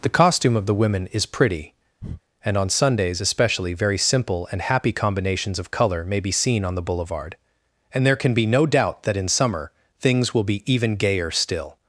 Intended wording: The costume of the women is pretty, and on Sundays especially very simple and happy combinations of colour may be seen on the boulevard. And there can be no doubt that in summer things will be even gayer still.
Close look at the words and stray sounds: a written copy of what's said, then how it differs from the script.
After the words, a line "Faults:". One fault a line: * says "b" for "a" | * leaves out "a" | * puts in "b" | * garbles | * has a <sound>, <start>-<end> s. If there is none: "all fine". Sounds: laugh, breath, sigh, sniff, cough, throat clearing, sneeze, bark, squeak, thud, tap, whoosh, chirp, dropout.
The costume of the women is pretty, and on Sundays especially very simple and happy combinations of colour may be seen on the boulevard. And there can be no doubt that in summer things will be even gayer still.
Faults:
* has a breath, 2.0-2.2 s